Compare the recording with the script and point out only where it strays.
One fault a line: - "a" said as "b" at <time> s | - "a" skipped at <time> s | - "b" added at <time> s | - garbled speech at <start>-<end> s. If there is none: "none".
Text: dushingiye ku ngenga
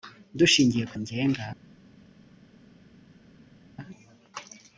none